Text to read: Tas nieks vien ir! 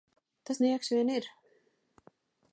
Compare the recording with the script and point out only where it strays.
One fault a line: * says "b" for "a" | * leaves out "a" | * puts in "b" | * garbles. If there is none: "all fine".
all fine